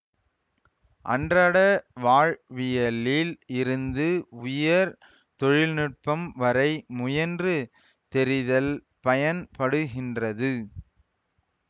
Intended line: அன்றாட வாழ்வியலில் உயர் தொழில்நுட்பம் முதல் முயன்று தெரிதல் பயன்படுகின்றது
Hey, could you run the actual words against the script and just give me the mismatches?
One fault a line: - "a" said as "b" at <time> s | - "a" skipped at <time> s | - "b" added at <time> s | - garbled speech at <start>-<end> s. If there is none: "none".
- "இருந்து" added at 3.6 s
- "முதல்" said as "வரை" at 6.4 s